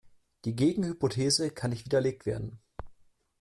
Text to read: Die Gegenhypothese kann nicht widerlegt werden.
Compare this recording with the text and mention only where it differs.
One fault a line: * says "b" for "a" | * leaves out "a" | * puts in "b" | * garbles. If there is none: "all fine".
all fine